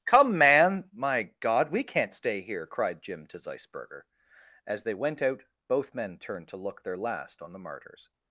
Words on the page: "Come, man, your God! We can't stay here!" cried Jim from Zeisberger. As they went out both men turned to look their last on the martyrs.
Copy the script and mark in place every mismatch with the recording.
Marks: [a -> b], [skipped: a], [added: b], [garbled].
"Come, man, [your -> my] God! We can't stay here!" cried Jim [from -> to] Zeisberger. As they went out both men turned to look their last on the martyrs.